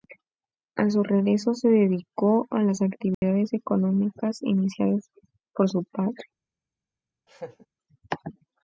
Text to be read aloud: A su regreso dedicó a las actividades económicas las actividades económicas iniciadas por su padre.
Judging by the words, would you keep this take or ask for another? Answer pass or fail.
fail